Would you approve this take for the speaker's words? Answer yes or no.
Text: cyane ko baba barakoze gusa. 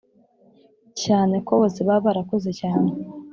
no